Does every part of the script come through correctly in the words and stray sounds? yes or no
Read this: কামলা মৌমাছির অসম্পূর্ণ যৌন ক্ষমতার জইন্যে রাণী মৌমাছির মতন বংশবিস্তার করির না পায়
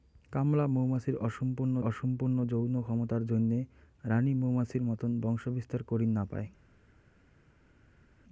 no